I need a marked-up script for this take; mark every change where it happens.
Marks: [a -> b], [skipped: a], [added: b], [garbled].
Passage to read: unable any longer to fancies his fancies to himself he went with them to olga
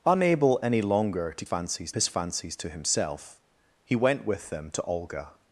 unable any longer to fancies his fancies to himself he went with them to olga